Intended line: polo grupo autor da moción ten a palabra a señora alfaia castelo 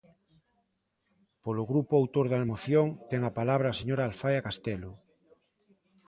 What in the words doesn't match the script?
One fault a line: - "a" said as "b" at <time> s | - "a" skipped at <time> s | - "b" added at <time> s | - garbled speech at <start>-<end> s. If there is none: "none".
none